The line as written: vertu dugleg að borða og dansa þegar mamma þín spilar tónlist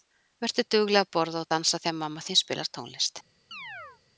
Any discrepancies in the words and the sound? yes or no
yes